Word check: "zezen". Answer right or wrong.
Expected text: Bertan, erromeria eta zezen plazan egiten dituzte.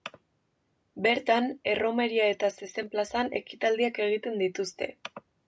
right